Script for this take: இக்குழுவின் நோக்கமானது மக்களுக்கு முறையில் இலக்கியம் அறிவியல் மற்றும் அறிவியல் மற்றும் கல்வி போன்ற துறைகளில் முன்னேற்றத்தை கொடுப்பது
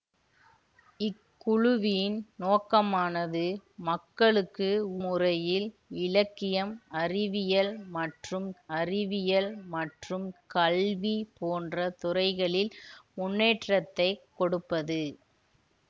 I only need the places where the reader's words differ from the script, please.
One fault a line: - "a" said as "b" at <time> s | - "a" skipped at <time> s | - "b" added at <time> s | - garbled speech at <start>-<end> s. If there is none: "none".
none